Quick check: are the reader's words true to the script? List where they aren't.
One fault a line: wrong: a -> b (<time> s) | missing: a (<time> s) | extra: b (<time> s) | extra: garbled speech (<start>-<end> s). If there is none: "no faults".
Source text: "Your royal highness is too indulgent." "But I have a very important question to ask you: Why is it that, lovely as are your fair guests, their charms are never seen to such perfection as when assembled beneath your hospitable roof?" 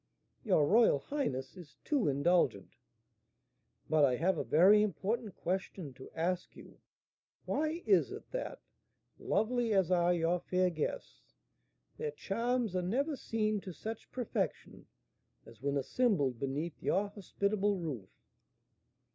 no faults